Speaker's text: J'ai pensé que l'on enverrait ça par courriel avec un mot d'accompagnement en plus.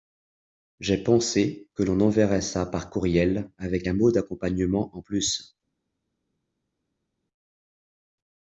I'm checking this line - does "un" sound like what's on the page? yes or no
yes